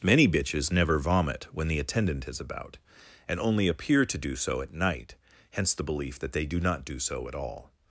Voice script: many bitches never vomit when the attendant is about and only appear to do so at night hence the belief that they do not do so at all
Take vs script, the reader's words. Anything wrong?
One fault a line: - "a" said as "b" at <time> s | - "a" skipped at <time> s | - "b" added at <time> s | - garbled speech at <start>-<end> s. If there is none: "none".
none